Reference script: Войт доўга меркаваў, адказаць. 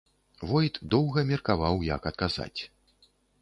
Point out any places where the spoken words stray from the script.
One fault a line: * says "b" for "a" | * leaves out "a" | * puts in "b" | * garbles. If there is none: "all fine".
* puts in "як"